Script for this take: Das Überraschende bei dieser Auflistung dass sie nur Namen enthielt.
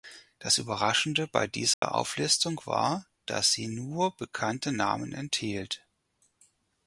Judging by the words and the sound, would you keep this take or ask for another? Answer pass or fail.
fail